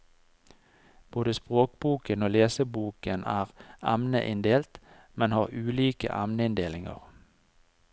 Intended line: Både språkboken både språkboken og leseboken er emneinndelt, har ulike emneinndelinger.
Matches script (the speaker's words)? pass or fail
fail